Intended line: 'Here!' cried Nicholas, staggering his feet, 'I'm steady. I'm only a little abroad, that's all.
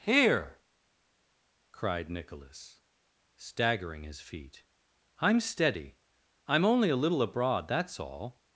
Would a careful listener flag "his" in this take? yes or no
no